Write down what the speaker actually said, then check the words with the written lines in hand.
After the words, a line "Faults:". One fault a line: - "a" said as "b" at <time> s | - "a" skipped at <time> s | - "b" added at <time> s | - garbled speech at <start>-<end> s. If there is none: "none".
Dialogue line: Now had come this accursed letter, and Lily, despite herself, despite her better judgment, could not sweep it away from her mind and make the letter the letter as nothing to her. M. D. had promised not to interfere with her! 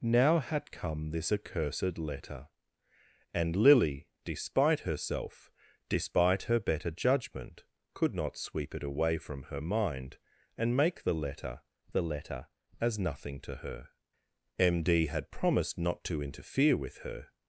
Now had come this accursed letter, and Lily, despite herself, despite her better judgment, could not sweep it away from her mind and make the letter the letter as nothing to her. M. D. had promised not to interfere with her!
Faults:
none